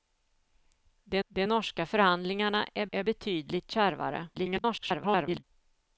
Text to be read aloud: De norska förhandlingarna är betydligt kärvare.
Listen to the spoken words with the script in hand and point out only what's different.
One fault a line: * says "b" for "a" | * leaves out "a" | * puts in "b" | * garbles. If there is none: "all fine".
* puts in "de"
* puts in "är"
* garbles